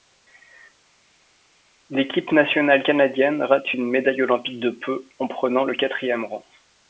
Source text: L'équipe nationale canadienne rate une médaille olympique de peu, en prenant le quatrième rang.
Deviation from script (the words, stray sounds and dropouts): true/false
false